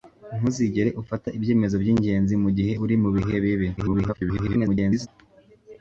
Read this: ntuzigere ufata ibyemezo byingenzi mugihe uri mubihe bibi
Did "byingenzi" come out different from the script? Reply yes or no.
no